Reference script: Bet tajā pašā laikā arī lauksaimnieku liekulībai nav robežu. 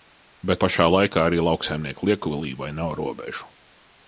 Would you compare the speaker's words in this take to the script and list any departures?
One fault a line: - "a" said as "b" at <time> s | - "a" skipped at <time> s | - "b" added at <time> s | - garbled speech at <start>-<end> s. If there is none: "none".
- "tajā" skipped at 0.6 s